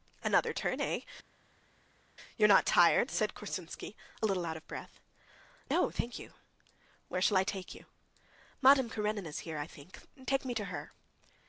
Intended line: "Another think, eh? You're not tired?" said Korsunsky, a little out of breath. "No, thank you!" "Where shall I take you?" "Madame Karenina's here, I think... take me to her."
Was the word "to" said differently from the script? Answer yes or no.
no